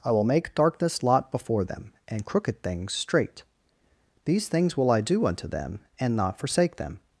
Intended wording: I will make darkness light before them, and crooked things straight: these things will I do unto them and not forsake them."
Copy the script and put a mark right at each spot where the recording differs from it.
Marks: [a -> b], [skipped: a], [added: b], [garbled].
I will make darkness [light -> lot] before them, and crooked things straight: these things will I do unto them and not forsake them."